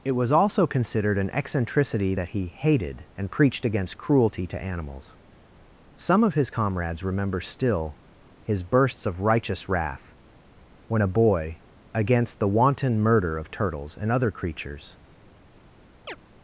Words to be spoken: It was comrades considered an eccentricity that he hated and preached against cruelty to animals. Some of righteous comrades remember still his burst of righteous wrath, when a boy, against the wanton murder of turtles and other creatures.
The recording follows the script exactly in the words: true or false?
false